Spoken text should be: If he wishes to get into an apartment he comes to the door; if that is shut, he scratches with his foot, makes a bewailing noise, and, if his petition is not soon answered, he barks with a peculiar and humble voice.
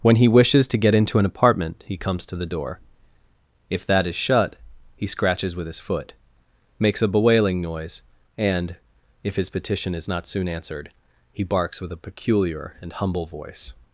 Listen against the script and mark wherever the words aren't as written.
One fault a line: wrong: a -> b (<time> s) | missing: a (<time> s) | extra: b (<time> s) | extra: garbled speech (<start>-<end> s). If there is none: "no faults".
wrong: If -> When (0.0 s)